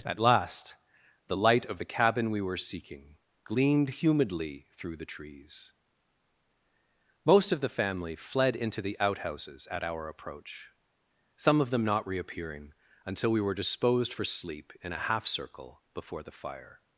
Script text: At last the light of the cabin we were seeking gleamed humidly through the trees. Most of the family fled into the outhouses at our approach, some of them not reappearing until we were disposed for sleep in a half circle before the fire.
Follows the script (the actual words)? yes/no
yes